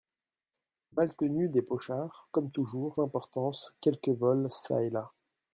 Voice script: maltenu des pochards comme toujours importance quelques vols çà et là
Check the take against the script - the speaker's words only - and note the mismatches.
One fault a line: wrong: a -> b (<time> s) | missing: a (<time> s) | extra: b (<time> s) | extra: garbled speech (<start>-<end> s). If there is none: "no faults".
no faults